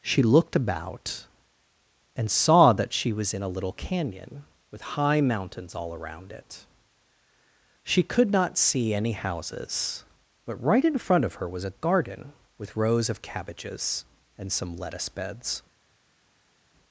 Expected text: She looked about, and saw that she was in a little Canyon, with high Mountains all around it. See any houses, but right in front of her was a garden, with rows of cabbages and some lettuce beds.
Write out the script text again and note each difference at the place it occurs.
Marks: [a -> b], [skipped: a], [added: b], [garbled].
She looked about, and saw that she was in a little Canyon, with high Mountains all around it. [added: She could not] See any houses, but right in front of her was a garden, with rows of cabbages and some lettuce beds.